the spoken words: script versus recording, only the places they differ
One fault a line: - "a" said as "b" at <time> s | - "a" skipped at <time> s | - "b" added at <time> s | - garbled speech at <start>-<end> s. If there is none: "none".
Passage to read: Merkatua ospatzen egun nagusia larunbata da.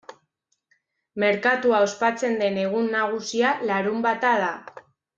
- "den" added at 2.4 s